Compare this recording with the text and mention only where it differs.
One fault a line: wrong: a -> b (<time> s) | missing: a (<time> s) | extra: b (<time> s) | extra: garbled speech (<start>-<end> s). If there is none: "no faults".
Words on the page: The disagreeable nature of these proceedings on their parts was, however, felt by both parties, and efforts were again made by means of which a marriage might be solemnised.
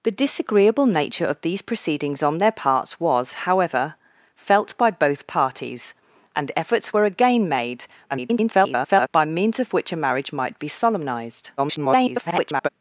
extra: garbled speech (8.1-9.1 s)
extra: garbled speech (11.6-12.7 s)